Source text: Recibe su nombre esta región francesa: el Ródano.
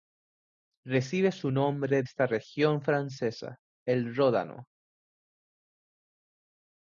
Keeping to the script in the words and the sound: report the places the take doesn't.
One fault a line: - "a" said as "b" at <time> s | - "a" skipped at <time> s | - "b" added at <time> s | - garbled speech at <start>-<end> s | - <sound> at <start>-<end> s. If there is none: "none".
none